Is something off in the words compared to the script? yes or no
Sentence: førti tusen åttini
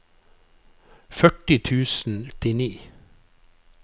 no